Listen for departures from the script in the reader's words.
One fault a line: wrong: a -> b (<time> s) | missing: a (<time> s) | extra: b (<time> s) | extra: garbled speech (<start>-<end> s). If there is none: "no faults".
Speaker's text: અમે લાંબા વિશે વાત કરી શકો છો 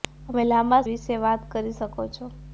no faults